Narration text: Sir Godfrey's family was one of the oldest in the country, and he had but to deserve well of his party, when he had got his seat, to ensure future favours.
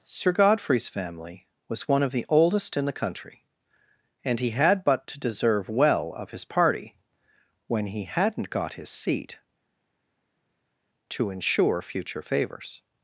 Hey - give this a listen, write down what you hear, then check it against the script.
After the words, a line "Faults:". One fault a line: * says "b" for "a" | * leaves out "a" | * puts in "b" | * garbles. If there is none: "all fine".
Sir Godfrey's family was one of the oldest in the country, and he had but to deserve well of his party, when he hadn't got his seat, to ensure future favours.
Faults:
* says "hadn't" for "had"